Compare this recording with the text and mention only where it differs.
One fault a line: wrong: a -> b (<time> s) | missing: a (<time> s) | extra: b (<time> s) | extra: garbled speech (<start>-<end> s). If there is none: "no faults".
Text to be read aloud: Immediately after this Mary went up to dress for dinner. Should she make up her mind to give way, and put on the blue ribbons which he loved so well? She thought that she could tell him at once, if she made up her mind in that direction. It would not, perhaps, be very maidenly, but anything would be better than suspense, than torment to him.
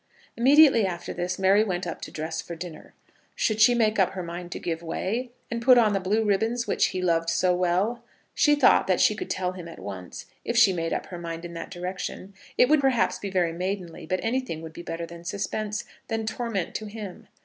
missing: not (12.8 s)